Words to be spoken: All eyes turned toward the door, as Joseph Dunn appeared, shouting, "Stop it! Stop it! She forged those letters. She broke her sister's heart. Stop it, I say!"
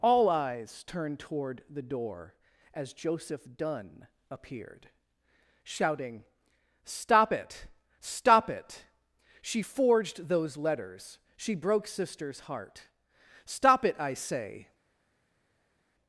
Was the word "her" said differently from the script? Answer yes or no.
yes